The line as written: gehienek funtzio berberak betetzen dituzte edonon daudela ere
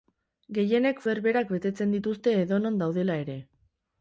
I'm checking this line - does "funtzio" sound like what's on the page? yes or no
no